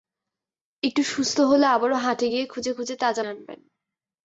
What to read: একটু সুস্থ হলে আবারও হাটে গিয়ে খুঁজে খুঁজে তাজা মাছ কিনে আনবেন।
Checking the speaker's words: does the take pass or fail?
fail